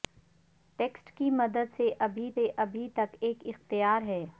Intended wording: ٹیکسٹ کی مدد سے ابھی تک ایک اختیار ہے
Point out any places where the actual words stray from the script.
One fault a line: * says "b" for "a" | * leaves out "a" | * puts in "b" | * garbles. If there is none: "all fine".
* puts in "سے ابھی"